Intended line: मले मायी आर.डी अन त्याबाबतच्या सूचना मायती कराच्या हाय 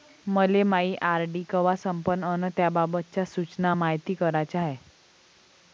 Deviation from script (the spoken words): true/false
true